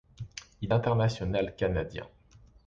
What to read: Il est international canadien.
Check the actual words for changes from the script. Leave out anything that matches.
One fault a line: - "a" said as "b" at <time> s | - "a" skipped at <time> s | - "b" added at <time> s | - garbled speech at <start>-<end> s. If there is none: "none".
- "est" skipped at 0.7 s